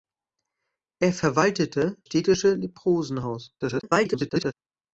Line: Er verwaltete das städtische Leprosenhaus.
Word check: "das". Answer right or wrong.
wrong